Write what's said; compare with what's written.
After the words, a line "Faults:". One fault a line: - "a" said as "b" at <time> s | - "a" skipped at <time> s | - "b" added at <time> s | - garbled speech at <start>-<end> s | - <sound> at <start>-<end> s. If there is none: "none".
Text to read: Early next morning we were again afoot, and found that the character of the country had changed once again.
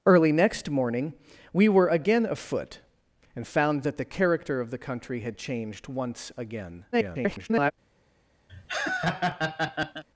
Early next morning we were again afoot, and found that the character of the country had changed once again. [garbled]
Faults:
- garbled speech at 6.9-7.7 s
- laugh at 8.5-10.0 s